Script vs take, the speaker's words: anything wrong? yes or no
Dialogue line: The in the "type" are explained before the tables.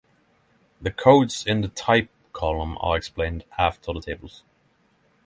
yes